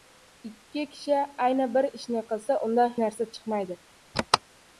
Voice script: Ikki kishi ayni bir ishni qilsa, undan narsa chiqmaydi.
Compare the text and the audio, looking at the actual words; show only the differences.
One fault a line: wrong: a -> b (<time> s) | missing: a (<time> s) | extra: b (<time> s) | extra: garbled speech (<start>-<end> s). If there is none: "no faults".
no faults